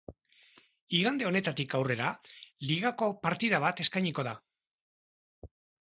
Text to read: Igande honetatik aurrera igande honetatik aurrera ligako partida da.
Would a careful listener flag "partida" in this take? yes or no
yes